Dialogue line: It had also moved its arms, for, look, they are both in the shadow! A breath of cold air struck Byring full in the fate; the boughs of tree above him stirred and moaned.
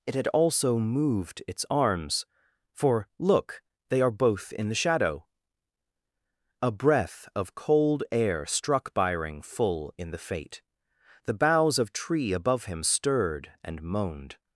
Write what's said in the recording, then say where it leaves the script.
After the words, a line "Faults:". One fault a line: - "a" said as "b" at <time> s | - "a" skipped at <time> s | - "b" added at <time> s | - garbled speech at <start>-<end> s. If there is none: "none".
It had also moved its arms, for, look, they are both in the shadow! A breath of cold air struck Byring full in the fate; the boughs of tree above him stirred and moaned.
Faults:
none